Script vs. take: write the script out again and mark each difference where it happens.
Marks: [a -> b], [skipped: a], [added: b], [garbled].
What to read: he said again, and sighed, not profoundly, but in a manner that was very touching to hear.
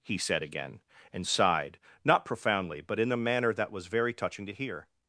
he said again, and sighed, not profoundly, but in a manner that was very touching to hear.